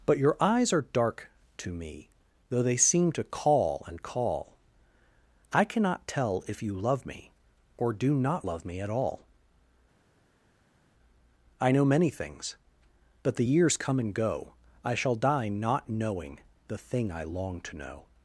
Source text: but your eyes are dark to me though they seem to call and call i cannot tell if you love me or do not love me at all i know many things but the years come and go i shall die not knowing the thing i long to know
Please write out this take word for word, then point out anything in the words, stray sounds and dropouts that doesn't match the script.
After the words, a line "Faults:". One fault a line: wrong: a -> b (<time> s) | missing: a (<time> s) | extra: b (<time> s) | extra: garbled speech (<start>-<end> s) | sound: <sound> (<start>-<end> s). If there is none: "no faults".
but your eyes are dark to me though they seem to call and call i cannot tell if you love me or do not love me at all i know many things but the years come and go i shall die not knowing the thing i long to know
Faults:
no faults